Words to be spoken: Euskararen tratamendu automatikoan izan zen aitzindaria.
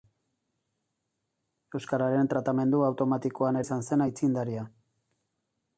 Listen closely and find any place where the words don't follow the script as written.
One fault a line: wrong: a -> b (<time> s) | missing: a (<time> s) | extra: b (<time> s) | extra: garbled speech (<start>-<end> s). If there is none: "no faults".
no faults